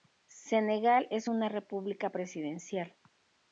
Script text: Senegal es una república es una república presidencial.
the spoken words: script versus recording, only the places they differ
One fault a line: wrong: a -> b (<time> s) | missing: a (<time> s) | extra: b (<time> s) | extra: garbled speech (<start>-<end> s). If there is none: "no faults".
missing: es una república (2.1 s)